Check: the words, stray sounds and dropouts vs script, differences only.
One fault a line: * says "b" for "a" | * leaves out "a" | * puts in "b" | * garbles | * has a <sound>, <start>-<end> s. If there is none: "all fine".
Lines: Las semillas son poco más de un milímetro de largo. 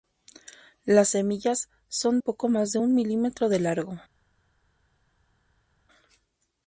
all fine